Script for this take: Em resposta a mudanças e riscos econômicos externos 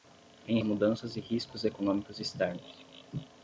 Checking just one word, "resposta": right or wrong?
wrong